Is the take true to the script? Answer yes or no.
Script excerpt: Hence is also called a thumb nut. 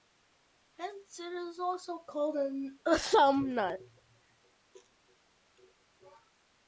no